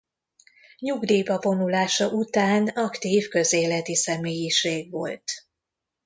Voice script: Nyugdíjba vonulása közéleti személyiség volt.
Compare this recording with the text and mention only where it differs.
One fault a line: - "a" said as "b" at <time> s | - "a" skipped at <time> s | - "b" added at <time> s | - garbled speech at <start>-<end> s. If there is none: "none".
- "után aktív" added at 2.1 s